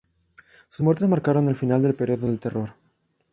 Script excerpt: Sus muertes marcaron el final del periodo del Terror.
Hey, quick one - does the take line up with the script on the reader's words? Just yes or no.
yes